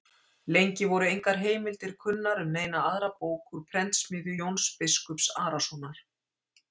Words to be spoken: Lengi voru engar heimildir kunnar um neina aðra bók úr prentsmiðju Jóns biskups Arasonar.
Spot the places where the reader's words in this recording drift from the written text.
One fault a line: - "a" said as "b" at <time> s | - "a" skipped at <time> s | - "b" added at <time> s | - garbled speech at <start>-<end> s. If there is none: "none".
none